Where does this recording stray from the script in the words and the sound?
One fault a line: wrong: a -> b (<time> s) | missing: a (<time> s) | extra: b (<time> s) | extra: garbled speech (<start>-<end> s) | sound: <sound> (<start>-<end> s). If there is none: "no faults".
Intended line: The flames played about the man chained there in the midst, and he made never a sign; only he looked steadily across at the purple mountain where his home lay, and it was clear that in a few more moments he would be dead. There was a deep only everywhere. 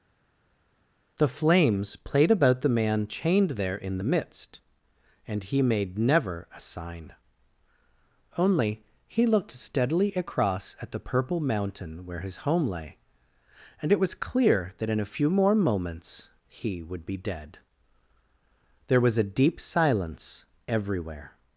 wrong: only -> silence (19.6 s)